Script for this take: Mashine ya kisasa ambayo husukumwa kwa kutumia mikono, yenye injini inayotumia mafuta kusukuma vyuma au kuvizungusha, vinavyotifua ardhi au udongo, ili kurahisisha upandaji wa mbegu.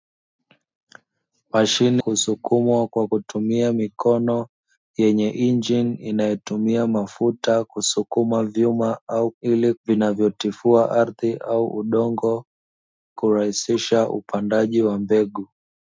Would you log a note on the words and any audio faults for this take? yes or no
yes